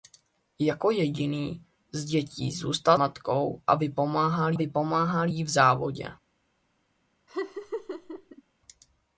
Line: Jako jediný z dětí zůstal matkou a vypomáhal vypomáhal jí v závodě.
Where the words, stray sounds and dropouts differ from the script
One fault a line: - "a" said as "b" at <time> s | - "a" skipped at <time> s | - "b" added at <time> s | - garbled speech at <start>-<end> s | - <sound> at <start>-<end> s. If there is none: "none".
- laugh at 7.3-8.4 s